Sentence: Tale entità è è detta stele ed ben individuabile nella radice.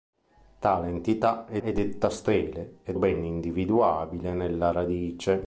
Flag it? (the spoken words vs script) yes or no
no